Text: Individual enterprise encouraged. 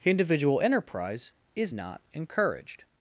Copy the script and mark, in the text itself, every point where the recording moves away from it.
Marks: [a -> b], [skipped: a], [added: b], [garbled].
Individual enterprise [added: is not] encouraged.